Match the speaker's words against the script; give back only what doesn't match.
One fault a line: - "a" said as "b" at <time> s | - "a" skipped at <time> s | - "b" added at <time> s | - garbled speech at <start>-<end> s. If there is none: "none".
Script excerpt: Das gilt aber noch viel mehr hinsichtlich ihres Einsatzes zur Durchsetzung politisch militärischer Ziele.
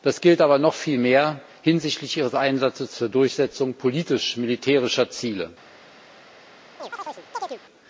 none